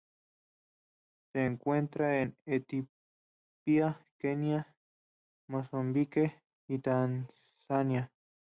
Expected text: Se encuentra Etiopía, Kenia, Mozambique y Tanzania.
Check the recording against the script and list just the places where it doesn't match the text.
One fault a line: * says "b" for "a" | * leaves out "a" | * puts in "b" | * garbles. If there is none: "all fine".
* puts in "en"